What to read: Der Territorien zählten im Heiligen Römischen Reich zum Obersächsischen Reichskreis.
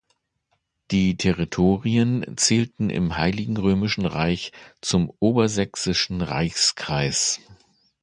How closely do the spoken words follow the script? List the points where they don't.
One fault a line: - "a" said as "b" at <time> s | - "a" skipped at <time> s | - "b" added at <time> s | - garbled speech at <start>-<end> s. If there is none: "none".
- "Der" said as "Die" at 0.9 s